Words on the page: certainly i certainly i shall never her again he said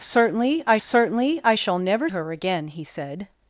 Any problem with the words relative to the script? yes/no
no